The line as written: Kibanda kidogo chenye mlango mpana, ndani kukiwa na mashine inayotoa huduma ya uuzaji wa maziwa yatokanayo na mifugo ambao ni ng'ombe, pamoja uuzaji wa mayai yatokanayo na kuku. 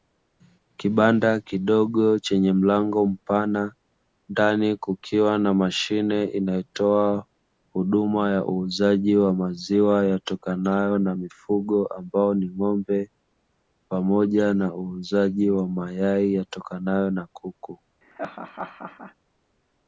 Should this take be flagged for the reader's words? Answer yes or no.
yes